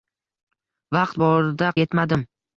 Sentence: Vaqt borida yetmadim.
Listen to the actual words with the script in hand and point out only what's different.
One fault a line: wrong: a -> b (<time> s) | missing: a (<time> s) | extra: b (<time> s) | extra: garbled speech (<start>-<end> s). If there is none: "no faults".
no faults